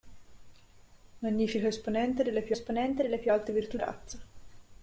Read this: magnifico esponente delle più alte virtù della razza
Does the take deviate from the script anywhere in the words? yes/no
yes